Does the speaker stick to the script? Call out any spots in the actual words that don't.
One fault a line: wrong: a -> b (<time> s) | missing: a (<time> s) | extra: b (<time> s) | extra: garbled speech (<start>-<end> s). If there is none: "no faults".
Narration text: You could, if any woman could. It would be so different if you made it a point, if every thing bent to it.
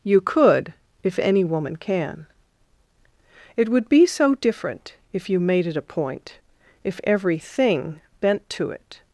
wrong: could -> can (1.8 s)